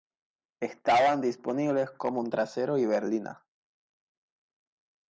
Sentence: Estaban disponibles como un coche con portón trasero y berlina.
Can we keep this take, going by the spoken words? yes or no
no